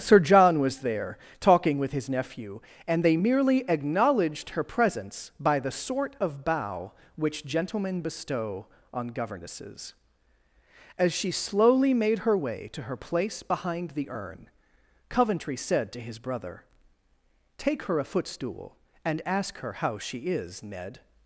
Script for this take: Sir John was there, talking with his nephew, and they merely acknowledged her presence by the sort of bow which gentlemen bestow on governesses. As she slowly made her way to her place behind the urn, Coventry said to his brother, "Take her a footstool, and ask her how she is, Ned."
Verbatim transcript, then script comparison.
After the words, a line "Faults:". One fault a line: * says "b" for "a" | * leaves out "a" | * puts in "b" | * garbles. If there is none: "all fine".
Sir John was there, talking with his nephew, and they merely acknowledged her presence by the sort of bow which gentlemen bestow on governesses. As she slowly made her way to her place behind the urn, Coventry said to his brother, "Take her a footstool, and ask her how she is, Ned."
Faults:
all fine